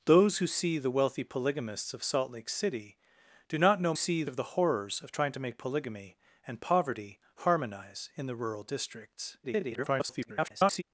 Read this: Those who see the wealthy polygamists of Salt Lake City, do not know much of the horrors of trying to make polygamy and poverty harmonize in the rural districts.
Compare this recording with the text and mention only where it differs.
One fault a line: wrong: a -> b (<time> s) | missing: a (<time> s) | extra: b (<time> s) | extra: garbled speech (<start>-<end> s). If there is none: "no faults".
wrong: much -> see (3.9 s)
extra: garbled speech (9.4-10.8 s)